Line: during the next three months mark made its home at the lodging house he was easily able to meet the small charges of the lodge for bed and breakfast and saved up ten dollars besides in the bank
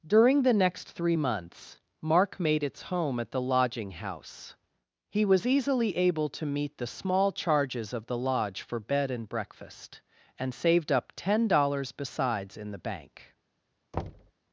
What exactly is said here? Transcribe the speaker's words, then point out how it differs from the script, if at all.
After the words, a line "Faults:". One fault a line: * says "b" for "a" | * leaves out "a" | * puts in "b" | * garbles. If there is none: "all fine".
during the next three months mark made its home at the lodging house he was easily able to meet the small charges of the lodge for bed and breakfast and saved up ten dollars besides in the bank
Faults:
all fine